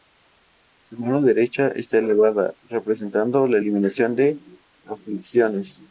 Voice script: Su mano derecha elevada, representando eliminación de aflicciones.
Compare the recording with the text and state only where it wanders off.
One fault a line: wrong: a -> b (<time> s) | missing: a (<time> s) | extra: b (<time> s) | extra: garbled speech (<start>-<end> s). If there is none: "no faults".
extra: está (1.7 s)
extra: la (3.5 s)